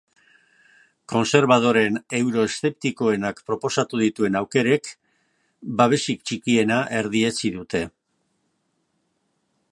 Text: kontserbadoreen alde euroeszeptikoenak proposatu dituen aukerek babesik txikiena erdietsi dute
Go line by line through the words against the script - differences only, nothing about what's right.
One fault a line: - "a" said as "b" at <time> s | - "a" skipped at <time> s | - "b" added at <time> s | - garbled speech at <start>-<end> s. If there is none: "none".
- "alde" skipped at 2.0 s